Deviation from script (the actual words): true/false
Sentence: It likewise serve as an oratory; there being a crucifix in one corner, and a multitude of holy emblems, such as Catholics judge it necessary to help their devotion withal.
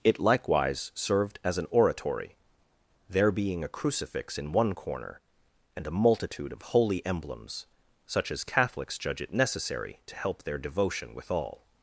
true